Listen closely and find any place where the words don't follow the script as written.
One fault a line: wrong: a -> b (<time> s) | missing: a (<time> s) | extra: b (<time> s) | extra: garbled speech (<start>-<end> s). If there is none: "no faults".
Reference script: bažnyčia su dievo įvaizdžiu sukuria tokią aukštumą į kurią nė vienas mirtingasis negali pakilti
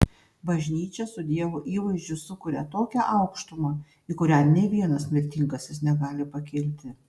no faults